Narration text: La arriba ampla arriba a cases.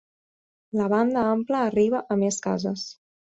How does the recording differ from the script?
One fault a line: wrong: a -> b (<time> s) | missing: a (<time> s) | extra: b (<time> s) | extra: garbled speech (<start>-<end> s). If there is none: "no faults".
wrong: arriba -> banda (0.9 s)
extra: més (2.2 s)